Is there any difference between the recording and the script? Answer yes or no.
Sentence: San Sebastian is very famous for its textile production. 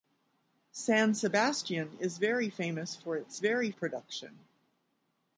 yes